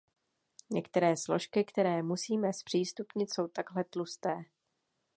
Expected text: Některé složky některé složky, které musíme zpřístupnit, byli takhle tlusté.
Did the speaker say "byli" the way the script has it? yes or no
no